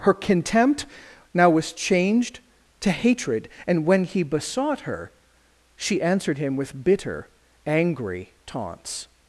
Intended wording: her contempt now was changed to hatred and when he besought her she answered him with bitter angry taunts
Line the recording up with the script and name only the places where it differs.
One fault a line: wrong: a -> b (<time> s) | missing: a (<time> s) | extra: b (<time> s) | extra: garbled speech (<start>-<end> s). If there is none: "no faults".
no faults